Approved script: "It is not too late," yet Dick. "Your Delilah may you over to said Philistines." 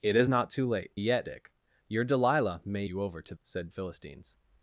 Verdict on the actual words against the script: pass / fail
pass